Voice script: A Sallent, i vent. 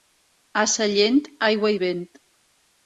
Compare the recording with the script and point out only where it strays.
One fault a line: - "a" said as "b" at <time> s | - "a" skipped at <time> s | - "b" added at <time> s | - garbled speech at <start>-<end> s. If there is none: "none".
- "aigua" added at 1.5 s